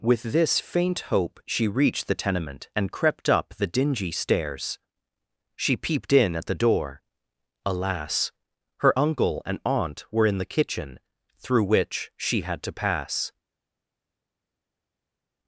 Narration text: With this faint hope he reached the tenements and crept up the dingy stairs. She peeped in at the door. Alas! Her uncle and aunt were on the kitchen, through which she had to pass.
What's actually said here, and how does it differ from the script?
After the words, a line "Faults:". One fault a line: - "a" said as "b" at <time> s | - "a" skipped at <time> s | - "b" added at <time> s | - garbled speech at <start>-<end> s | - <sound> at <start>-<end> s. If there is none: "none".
With this faint hope she reached the tenement and crept up the dingy stairs. She peeped in at the door. Alas! Her uncle and aunt were in the kitchen, through which she had to pass.
Faults:
- "he" said as "she" at 1.4 s
- "tenements" said as "tenement" at 2.1 s
- "on" said as "in" at 10.2 s